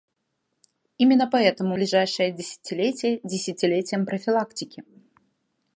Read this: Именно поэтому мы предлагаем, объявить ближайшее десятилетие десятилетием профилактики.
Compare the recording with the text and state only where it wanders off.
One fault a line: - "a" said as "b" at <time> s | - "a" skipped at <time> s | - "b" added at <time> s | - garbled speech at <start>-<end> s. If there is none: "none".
- "мы предлагаем объявить" skipped at 1.8 s